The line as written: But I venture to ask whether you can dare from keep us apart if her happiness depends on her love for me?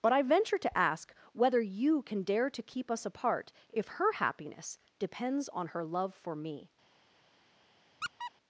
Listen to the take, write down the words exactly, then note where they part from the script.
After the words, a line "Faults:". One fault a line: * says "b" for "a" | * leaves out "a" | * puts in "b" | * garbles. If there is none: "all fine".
But I venture to ask whether you can dare to keep us apart if her happiness depends on her love for me?
Faults:
* says "to" for "from"